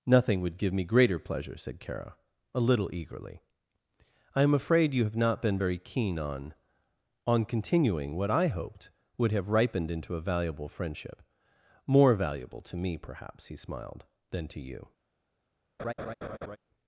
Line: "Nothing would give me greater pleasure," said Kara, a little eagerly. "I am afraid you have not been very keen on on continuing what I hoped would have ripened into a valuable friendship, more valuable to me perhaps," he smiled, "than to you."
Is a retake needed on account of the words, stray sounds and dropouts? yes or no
yes